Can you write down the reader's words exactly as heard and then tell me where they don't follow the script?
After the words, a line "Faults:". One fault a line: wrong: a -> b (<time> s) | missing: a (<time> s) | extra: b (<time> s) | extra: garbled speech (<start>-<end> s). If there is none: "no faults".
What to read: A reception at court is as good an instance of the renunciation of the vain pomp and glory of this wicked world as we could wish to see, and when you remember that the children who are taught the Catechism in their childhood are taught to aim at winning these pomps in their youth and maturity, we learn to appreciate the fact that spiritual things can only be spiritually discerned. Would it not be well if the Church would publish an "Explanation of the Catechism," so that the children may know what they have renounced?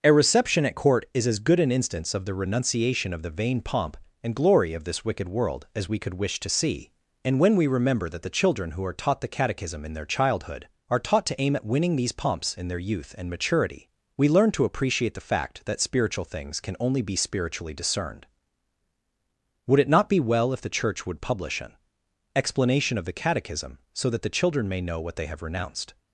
A reception at court is as good an instance of the renunciation of the vain pomp and glory of this wicked world as we could wish to see, and when we remember that the children who are taught the Catechism in their childhood are taught to aim at winning these pomps in their youth and maturity, we learn to appreciate the fact that spiritual things can only be spiritually discerned. Would it not be well if the Church would publish an "Explanation of the Catechism," so that the children may know what they have renounced?
Faults:
wrong: you -> we (7.5 s)